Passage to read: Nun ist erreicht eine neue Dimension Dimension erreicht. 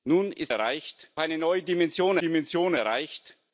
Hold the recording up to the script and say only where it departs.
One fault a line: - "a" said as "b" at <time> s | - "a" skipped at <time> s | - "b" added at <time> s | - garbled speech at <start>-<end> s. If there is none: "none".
none